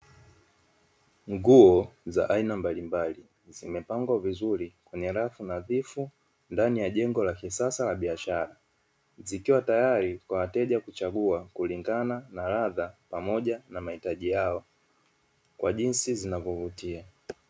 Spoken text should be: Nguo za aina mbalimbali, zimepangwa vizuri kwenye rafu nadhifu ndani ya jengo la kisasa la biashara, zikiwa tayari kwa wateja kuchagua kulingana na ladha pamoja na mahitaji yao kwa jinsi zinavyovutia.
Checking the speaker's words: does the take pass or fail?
pass